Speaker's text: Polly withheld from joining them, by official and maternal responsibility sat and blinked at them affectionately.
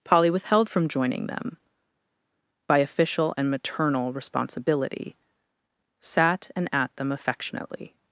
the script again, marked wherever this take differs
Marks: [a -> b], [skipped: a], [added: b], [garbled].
Polly withheld from joining them, by official and maternal responsibility sat and [skipped: blinked] at them affectionately.